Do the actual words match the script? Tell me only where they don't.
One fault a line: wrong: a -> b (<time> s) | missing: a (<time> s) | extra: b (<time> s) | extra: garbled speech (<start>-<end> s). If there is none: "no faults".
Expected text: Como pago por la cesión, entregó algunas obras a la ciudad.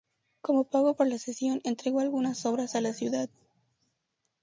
no faults